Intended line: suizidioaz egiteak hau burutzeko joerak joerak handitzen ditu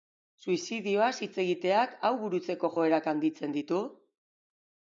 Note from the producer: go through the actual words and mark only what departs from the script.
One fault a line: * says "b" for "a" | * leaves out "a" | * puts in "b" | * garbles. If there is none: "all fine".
* puts in "hitz"
* leaves out "joerak"